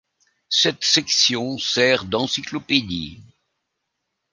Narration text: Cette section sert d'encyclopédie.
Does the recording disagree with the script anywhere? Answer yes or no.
no